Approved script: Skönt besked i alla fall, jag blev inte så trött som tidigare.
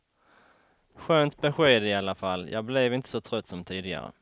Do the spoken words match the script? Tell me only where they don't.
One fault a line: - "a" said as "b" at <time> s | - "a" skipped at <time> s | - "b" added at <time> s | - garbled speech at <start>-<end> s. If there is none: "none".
none